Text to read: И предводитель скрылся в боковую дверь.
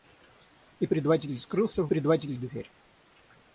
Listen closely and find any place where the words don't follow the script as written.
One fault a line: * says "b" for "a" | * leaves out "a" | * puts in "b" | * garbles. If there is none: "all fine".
* says "предводитель" for "боковую"